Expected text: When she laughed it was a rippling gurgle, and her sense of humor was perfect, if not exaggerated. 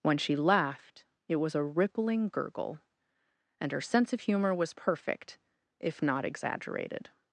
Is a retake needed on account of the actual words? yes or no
no